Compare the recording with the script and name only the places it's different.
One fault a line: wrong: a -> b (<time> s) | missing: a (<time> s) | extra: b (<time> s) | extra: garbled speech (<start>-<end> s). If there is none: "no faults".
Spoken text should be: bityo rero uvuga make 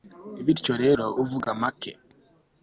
no faults